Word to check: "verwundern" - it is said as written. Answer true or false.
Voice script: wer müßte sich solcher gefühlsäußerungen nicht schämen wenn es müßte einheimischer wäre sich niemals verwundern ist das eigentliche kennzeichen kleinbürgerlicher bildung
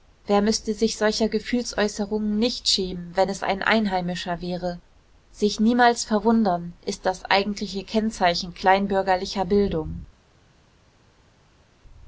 true